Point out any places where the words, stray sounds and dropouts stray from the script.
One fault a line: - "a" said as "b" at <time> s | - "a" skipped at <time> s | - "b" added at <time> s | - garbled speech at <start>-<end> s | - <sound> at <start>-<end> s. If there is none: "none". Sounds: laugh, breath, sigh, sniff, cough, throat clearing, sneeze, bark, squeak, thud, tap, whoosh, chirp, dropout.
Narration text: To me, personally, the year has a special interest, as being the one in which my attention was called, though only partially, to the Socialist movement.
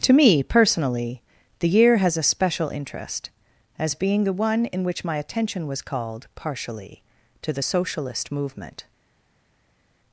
- "though only" skipped at 6.3 s